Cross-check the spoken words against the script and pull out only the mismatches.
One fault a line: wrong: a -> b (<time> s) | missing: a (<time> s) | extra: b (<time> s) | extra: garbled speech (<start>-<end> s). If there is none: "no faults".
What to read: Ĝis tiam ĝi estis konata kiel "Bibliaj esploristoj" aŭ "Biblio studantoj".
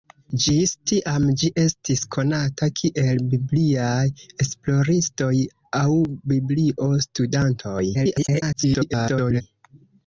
extra: garbled speech (7.9-9.4 s)